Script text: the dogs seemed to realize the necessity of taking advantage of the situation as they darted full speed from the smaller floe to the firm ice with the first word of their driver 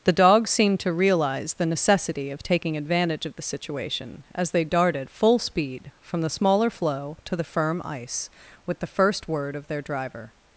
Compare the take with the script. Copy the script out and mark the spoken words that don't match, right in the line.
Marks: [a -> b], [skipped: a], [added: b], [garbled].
the dogs seemed to realize the necessity of taking advantage of the situation as they darted full speed from the smaller floe to the firm ice with the first word of their driver